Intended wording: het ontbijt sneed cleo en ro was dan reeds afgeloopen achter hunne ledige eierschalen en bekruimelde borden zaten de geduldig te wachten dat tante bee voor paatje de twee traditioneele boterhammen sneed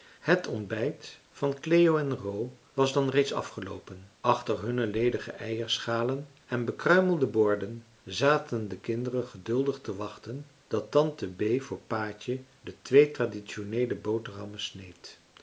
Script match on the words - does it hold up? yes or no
no